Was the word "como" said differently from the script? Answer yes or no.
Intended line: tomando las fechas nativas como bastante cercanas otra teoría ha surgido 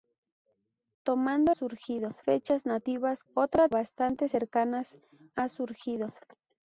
yes